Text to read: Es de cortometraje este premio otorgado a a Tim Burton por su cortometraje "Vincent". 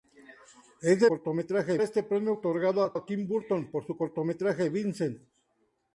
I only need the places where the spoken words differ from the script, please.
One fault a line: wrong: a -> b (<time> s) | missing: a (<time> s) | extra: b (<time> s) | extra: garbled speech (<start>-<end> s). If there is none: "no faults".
no faults